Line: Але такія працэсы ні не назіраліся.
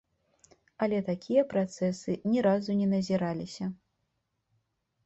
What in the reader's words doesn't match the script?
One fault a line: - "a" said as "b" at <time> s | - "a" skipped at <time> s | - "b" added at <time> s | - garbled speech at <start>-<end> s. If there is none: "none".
- "разу" added at 2.5 s